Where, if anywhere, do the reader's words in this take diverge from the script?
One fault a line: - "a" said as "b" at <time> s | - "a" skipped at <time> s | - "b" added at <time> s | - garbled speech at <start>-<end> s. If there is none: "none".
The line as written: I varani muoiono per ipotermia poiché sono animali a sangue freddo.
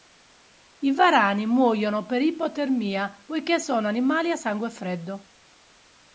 none